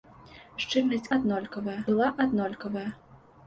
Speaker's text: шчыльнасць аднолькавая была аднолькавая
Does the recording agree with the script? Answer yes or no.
yes